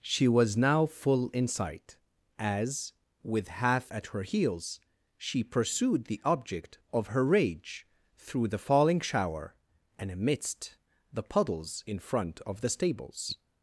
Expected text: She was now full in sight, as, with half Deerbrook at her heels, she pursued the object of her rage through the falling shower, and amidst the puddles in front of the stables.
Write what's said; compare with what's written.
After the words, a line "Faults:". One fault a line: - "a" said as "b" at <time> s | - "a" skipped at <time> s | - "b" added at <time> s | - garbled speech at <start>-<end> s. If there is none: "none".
She was now full in sight, as, with half At her heels, she pursued the object of her rage through the falling shower, and amidst the puddles in front of the stables.
Faults:
- "Deerbrook" skipped at 3.9 s